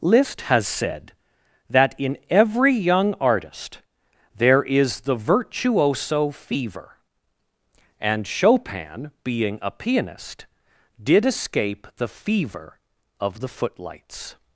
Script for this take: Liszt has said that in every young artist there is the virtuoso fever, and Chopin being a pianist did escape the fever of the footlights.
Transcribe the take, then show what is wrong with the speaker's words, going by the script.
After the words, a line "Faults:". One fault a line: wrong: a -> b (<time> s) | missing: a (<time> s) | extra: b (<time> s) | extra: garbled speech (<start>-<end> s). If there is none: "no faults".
Liszt has said that in every young artist there is the virtuoso fever, and Chopin being a pianist did escape the fever of the footlights.
Faults:
no faults